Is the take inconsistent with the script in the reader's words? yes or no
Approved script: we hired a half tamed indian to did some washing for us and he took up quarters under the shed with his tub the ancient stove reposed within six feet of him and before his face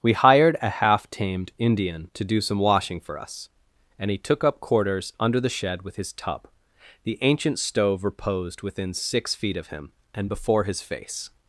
yes